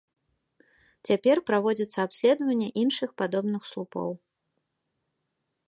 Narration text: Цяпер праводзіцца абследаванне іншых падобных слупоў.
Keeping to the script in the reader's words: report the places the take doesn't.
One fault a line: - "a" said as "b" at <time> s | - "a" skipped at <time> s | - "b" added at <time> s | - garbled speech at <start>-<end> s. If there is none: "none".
none